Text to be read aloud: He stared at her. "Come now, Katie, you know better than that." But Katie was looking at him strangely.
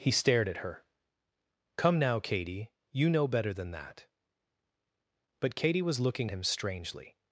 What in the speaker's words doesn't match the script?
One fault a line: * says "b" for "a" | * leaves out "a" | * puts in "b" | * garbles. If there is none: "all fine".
* leaves out "at"